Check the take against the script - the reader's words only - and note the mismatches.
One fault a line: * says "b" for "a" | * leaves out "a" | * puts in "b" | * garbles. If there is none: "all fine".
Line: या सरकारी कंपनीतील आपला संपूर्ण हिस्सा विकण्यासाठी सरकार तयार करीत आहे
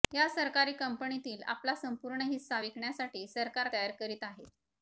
all fine